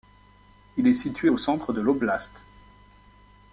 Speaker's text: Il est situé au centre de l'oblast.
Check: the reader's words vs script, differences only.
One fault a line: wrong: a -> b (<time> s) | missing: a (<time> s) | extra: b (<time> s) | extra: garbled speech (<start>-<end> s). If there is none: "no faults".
no faults